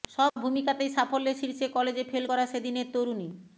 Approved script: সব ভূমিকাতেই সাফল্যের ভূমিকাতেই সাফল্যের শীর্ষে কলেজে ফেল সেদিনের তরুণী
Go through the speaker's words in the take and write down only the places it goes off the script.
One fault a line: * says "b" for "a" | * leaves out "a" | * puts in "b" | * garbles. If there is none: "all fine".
* leaves out "ভূমিকাতেই সাফল্যের"
* puts in "করা"